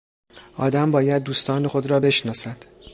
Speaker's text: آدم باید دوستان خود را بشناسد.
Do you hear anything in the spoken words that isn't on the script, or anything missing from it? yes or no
no